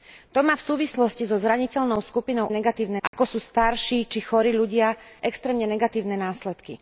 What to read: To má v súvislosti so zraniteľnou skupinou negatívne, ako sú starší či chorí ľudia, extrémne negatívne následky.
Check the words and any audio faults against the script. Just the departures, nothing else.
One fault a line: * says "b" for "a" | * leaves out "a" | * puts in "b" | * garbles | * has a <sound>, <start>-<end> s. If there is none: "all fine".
* has a dropout, 3.1-3.1 s